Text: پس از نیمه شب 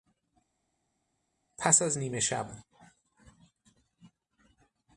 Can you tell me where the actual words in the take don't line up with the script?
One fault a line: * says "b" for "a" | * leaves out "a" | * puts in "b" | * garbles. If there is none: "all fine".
all fine